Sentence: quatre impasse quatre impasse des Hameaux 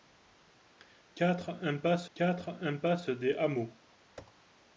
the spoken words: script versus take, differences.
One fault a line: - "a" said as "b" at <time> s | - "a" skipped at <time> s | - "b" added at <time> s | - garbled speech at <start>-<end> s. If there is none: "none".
none